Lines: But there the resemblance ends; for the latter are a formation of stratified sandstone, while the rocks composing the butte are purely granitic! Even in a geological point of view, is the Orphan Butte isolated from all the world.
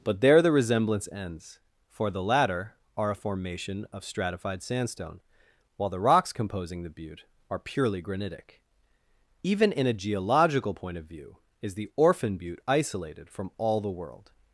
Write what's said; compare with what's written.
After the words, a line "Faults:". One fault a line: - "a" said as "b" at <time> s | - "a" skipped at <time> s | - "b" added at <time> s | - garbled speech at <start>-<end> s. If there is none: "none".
But there the resemblance ends; for the latter are a formation of stratified sandstone, while the rocks composing the butte are purely granitic! Even in a geological point of view, is the Orphan Butte isolated from all the world.
Faults:
none